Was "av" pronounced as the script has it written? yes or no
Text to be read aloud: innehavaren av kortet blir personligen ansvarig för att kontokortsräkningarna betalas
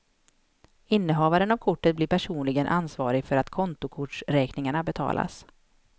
yes